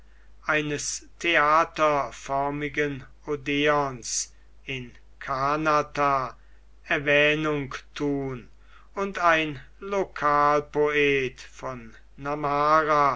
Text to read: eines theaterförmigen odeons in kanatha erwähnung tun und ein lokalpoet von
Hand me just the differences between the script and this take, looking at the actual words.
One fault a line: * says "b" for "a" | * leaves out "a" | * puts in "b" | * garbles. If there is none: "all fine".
all fine